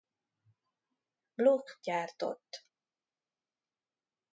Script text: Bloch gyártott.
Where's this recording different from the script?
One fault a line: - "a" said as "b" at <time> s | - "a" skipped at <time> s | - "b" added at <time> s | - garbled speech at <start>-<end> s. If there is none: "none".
none